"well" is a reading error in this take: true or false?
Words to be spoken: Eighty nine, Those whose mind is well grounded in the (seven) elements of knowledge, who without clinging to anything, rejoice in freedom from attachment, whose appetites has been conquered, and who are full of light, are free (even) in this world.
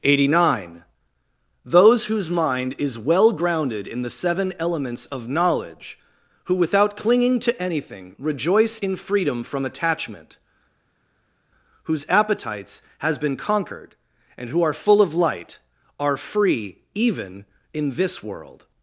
false